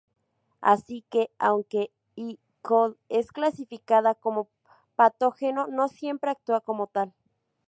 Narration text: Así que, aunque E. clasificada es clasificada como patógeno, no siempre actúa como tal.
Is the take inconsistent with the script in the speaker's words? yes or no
yes